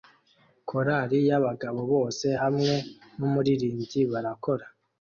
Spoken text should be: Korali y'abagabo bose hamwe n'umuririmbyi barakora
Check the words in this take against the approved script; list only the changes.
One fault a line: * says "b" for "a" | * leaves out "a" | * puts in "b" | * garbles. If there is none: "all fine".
all fine